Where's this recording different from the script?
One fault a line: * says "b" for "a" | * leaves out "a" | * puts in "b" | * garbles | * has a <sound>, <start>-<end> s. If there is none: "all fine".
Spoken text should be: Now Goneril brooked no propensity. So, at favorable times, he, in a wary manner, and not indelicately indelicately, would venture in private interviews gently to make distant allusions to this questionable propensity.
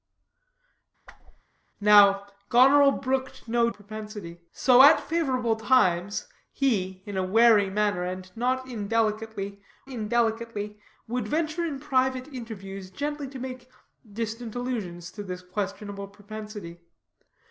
* has a whoosh, 1.1-1.4 s